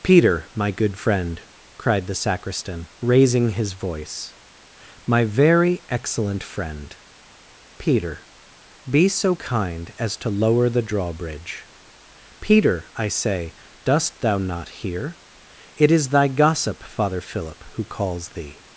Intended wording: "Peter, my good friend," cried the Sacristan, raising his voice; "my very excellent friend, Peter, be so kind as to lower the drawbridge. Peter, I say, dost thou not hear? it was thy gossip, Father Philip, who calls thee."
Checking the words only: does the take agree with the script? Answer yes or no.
no